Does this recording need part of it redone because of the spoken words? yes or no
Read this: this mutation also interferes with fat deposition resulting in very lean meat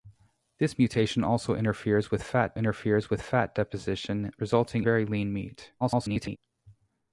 yes